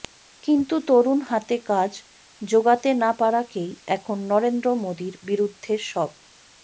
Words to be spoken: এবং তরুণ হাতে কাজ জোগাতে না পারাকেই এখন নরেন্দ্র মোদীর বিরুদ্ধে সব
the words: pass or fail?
fail